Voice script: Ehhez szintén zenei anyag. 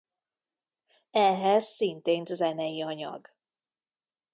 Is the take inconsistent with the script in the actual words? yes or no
no